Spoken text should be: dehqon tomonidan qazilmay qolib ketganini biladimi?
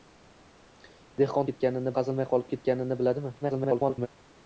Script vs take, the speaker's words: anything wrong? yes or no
yes